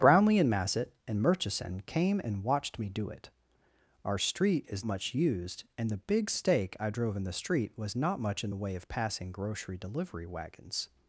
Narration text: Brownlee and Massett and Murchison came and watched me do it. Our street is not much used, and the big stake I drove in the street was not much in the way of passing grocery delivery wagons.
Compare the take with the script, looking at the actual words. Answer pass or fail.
fail